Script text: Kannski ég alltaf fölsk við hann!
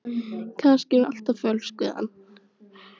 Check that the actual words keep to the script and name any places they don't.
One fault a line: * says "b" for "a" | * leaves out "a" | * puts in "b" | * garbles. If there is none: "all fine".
all fine